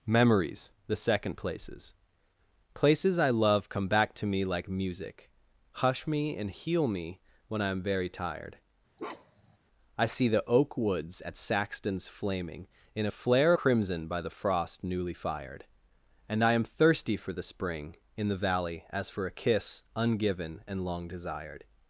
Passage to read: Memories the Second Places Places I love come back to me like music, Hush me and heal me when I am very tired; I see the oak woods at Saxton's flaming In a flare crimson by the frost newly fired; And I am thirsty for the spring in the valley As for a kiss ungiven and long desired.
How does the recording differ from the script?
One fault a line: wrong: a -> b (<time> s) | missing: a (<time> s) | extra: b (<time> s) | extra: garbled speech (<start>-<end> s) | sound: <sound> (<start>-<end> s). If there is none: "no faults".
sound: bark (9.0-9.6 s)